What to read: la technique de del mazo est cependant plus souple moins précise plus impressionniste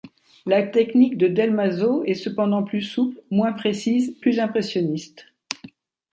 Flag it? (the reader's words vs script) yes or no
no